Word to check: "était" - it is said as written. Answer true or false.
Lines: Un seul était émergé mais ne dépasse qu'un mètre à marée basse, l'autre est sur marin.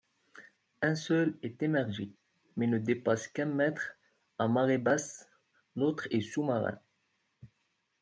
false